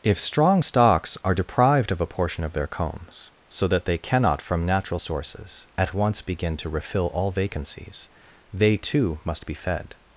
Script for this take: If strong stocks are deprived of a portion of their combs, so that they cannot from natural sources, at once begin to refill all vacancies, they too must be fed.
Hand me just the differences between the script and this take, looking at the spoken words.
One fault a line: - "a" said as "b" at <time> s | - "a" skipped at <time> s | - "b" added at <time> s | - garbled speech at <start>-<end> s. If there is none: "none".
none